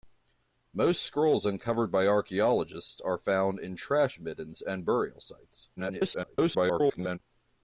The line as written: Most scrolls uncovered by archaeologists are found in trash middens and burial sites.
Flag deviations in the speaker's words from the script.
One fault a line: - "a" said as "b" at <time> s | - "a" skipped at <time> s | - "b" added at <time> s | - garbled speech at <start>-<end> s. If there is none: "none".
- garbled speech at 5.8-7.2 s